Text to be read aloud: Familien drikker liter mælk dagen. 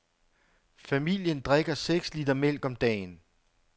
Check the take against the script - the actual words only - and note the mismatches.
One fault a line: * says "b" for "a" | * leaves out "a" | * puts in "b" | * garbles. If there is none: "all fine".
* puts in "seks"
* puts in "om"